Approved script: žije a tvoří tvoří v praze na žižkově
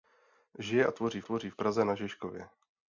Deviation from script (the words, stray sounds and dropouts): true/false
false